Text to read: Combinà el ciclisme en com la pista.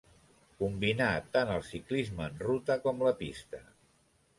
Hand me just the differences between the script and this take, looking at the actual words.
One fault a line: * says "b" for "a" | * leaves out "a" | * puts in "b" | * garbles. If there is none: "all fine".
* puts in "tant"
* puts in "ruta"